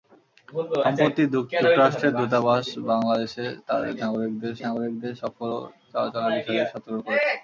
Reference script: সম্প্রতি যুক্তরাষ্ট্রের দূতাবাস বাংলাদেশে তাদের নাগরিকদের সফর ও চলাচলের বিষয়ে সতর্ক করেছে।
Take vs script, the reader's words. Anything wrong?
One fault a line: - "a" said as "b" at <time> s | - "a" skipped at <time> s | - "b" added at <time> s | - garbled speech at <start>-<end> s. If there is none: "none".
- "নাগরিকদের" added at 4.6 s